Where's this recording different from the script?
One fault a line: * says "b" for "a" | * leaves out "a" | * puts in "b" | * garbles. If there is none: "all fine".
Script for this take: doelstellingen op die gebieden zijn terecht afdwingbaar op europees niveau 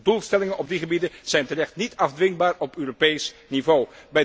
* puts in "niet"